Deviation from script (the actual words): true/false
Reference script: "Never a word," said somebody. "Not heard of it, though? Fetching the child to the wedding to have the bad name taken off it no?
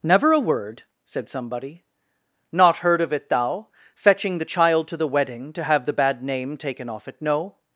true